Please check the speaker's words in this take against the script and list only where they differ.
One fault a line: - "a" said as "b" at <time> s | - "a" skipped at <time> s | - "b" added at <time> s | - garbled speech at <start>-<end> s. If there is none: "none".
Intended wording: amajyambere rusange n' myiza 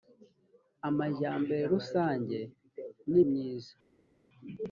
none